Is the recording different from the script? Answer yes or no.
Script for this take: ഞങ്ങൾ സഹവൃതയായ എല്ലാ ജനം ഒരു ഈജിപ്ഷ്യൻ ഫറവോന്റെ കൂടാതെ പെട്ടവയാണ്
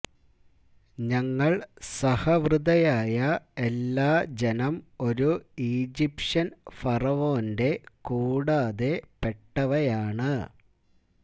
no